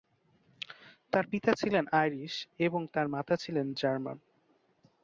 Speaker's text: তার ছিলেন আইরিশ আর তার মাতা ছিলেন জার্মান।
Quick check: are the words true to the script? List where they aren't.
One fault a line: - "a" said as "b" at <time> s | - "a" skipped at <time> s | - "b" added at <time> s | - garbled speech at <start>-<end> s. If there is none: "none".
- "পিতা" added at 1.3 s
- "আর" said as "এবং" at 2.6 s